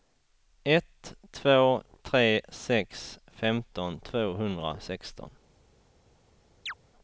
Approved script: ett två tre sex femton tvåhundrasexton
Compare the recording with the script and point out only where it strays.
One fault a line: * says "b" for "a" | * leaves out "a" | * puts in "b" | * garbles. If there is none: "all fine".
all fine